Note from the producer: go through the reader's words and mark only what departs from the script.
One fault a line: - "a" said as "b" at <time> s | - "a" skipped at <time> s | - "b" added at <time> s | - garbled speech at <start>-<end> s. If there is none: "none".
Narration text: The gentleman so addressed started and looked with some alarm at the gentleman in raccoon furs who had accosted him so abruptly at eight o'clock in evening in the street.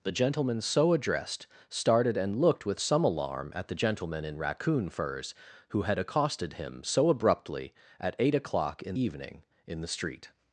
none